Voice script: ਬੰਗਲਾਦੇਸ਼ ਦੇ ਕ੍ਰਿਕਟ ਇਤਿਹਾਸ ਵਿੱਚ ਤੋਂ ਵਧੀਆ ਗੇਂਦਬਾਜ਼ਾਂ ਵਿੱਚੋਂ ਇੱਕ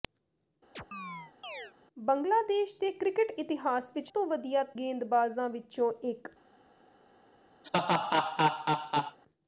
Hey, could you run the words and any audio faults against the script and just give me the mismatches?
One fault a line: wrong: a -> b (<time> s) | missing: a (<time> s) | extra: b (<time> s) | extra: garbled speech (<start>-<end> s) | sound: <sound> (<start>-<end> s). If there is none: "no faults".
sound: chirp (0.8-1.7 s)
sound: laugh (7.6-9.2 s)